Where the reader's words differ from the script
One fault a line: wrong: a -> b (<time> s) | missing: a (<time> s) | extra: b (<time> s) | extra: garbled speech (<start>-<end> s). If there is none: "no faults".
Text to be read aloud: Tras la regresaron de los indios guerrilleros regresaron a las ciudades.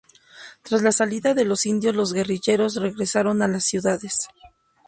wrong: regresaron -> salida (0.9 s)
extra: los (1.9 s)